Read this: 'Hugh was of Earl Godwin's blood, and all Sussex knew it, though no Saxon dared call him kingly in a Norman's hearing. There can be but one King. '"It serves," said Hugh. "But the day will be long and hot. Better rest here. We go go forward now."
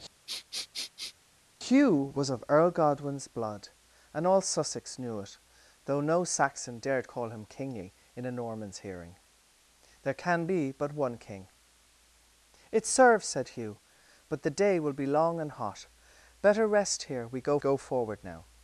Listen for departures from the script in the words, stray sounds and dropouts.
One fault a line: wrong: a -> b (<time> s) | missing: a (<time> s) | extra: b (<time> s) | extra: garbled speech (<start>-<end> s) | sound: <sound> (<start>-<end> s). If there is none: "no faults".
sound: sniff (0.3-1.1 s)